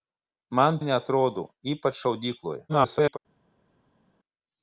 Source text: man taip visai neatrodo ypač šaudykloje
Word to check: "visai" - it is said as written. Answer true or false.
false